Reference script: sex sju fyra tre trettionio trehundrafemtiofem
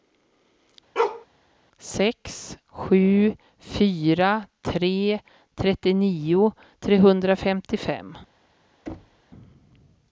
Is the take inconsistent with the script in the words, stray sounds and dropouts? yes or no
yes